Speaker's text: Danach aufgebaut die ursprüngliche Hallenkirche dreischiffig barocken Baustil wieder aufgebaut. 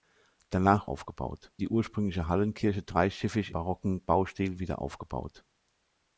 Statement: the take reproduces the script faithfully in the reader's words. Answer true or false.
true